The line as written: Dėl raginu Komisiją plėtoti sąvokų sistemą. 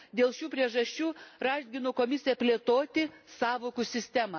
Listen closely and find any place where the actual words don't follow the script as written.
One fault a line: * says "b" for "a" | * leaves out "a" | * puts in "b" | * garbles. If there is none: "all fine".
* puts in "šių priežasčių"